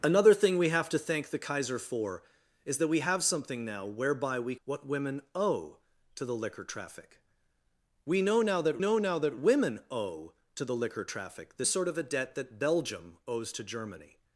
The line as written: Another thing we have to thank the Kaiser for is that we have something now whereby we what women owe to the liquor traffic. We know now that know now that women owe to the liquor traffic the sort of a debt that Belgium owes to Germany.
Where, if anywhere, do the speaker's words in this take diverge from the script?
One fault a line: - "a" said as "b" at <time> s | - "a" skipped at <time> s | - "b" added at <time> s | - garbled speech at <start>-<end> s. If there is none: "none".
none